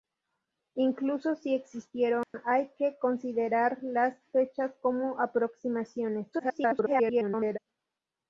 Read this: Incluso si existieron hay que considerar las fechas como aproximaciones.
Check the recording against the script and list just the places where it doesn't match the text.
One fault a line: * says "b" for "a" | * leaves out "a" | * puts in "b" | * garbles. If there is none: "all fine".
* garbles